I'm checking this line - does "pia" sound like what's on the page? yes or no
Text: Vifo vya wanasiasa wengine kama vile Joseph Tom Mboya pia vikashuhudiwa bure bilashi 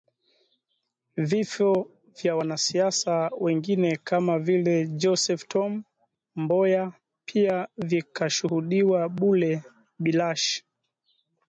yes